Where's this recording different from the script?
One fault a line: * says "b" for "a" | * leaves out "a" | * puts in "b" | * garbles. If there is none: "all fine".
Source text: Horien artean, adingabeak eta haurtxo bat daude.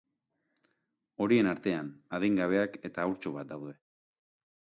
all fine